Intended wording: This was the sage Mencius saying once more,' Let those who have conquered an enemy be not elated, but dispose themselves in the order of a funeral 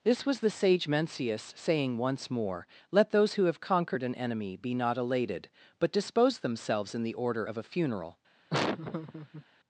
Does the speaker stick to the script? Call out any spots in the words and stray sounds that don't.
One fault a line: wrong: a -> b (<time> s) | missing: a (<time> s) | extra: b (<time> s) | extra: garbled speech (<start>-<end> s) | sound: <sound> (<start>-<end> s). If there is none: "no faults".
sound: laugh (8.5-9.4 s)